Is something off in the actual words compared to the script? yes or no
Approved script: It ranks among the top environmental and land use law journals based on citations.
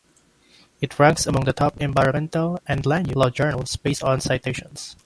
yes